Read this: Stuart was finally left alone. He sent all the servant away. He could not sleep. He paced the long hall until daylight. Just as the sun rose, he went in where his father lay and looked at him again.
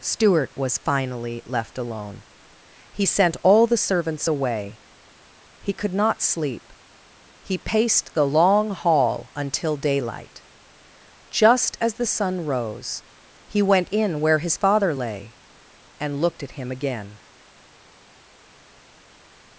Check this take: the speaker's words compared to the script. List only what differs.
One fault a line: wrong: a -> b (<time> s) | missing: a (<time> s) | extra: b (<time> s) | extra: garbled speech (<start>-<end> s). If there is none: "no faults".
wrong: servant -> servants (3.8 s)